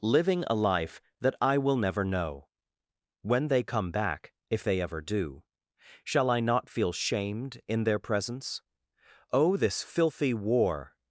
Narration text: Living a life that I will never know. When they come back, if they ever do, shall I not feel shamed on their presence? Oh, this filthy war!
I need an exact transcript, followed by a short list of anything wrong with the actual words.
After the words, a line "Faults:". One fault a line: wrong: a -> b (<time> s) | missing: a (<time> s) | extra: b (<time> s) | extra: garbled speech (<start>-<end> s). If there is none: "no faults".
Living a life that I will never know. When they come back, if they ever do, shall I not feel shamed in their presence? Oh, this filthy war!
Faults:
wrong: on -> in (7.7 s)